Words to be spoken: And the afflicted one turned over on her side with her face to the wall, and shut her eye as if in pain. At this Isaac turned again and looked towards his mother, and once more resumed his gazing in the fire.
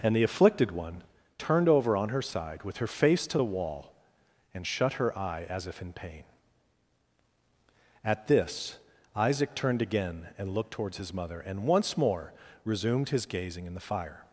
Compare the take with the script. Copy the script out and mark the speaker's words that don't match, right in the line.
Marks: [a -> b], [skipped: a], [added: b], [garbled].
And the afflicted one turned over on her side with her face to the wall, and shut her eye as if in pain. At this Isaac turned again and looked towards his mother, and once more resumed his gazing in the fire.